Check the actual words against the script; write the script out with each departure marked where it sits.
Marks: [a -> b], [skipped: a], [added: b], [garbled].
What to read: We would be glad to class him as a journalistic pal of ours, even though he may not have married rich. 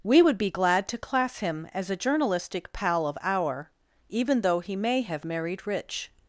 We would be glad to class him as a journalistic pal of [ours, -> our] even though he may [skipped: not] have married rich.